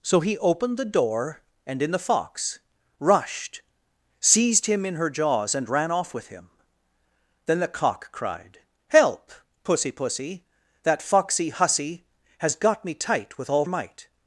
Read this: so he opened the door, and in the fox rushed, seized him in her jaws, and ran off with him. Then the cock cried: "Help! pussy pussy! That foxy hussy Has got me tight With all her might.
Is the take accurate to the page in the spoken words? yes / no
no